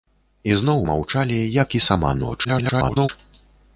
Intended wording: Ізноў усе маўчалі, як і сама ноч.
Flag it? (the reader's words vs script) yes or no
yes